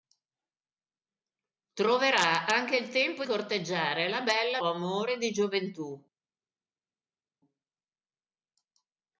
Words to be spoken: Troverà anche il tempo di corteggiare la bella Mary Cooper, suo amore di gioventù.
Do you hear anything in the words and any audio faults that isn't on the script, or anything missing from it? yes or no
yes